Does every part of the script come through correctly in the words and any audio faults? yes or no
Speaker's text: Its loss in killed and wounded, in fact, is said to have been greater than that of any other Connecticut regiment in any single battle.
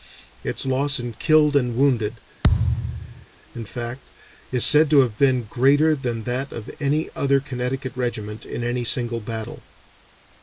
no